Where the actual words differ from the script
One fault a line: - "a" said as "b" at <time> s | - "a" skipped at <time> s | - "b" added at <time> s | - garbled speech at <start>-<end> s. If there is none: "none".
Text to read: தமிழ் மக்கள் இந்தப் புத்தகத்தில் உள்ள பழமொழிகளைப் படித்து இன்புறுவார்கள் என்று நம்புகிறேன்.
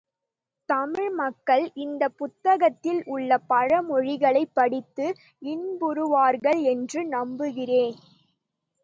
none